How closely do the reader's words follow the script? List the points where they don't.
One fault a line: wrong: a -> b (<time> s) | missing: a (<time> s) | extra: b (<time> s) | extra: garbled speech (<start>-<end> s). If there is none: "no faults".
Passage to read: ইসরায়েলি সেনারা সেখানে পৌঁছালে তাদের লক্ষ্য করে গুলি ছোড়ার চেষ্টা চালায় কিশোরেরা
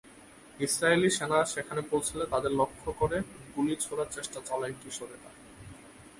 no faults